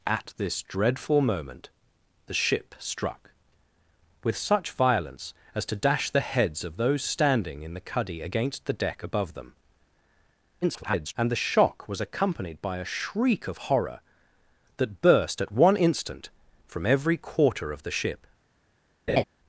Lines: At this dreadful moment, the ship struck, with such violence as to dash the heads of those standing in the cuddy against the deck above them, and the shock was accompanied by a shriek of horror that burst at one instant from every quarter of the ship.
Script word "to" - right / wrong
right